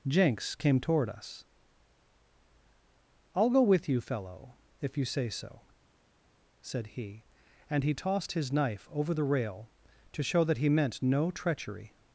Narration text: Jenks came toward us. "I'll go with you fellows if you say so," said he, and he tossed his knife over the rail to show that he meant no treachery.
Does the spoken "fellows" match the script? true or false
false